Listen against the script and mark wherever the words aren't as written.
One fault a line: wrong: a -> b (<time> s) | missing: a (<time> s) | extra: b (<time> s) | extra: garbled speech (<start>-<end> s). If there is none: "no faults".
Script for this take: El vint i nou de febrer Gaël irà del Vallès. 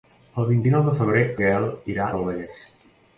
no faults